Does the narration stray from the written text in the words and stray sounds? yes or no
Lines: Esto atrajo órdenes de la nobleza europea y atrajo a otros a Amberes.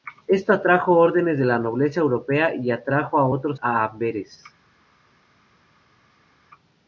no